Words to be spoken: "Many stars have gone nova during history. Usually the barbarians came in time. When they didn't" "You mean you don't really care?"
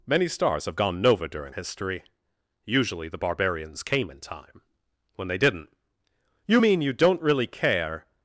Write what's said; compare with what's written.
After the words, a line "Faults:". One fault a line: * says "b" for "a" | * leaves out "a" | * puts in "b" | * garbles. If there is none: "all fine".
"Many stars have gone nova during history. Usually the barbarians came in time. When they didn't" "You mean you don't really care?"
Faults:
all fine